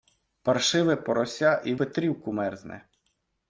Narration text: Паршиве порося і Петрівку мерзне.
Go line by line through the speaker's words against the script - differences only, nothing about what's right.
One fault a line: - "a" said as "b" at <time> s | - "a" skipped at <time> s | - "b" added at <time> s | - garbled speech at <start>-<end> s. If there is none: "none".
none